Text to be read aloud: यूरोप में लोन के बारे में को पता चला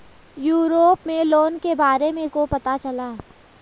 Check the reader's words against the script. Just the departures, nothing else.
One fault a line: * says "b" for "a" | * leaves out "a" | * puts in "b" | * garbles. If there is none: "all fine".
all fine